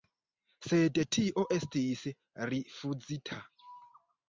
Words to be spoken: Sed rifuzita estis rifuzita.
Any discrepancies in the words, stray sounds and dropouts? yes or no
yes